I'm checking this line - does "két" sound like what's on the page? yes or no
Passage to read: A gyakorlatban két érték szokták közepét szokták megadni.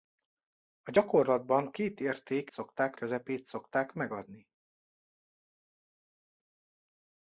yes